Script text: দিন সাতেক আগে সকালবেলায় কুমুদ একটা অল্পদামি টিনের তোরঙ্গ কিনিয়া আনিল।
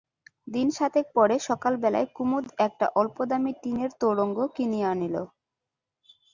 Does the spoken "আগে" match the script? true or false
false